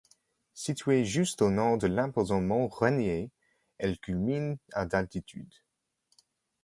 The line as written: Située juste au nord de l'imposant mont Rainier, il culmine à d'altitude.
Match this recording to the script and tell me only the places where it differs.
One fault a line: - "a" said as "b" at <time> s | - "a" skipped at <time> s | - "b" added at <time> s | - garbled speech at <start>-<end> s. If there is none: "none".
- "il" said as "elle" at 3.8 s